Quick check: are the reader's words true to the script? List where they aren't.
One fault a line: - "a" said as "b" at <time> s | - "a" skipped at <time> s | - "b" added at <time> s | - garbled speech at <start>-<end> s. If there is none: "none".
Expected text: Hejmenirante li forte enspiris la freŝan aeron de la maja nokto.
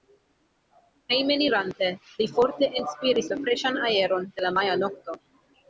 none